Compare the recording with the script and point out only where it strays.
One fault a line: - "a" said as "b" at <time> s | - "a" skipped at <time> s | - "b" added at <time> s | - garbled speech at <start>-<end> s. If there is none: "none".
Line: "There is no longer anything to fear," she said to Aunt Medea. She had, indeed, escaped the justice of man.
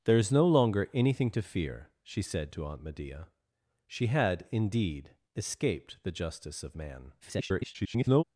- garbled speech at 7.2-8.2 s